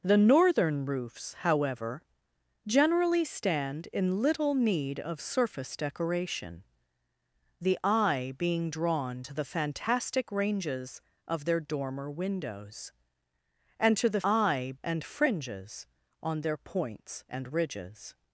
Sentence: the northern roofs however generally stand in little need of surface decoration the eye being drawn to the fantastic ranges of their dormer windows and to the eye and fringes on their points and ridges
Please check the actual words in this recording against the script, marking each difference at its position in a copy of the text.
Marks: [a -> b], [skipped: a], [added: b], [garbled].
the northern roofs however generally stand in little need of surface decoration the eye being drawn to the fantastic ranges of their dormer windows and to the eye and fringes on their points and ridges